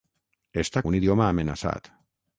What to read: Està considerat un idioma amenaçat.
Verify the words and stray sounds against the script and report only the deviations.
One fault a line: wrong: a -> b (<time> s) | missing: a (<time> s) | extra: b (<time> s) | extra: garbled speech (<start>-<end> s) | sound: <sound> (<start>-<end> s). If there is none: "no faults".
missing: considerat (0.8 s)